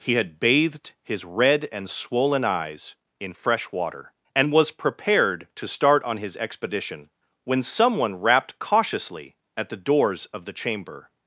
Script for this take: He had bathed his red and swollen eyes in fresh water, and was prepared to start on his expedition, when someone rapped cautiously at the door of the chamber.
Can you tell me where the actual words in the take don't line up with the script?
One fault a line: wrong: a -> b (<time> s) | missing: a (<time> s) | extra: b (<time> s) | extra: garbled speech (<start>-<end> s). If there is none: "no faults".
wrong: door -> doors (9.8 s)